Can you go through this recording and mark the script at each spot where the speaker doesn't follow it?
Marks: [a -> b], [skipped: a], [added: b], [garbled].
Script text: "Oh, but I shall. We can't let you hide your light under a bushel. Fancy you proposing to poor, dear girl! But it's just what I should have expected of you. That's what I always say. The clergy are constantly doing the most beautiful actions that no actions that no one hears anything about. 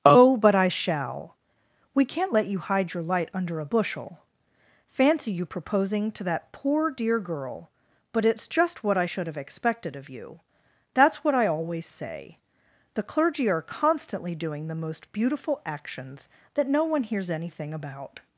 "Oh, but I shall. We can't let you hide your light under a bushel. Fancy you proposing to [added: that] poor, dear girl! But it's just what I should have expected of you. That's what I always say. The clergy are constantly doing the most beautiful actions that no [skipped: actions that no] one hears anything about.